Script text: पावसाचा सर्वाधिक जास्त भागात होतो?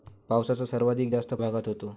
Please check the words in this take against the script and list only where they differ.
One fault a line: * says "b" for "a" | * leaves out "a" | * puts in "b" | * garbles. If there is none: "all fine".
all fine